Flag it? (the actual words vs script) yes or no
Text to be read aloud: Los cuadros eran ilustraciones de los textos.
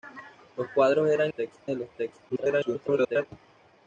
yes